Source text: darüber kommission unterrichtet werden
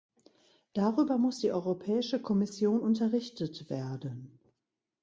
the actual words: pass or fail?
fail